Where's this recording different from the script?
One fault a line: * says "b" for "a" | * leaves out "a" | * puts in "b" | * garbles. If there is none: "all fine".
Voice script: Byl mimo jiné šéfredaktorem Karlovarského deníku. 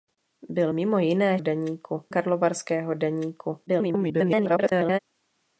* says "deníku" for "šéfredaktorem"
* garbles